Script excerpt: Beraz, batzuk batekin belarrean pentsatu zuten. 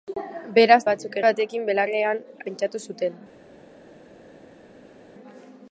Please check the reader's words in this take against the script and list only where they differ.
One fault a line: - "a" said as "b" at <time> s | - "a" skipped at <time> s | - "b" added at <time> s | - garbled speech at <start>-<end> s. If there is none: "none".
none